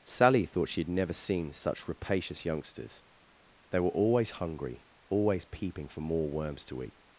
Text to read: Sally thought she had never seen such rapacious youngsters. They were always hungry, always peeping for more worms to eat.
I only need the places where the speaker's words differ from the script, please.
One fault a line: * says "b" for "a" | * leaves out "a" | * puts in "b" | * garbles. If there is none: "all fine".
all fine